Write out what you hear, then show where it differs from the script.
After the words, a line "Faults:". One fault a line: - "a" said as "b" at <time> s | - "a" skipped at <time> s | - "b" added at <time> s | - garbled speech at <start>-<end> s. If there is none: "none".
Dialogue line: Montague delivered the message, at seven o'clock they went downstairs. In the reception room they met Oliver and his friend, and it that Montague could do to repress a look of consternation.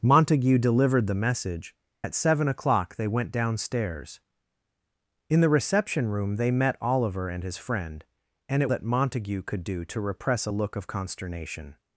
Montague delivered the message, at seven o'clock they went downstairs. In the reception room they met Oliver and his friend, and it that Montague could do to repress a look of consternation.
Faults:
none